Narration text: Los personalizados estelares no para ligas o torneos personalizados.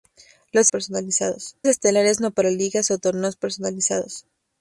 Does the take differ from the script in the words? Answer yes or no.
no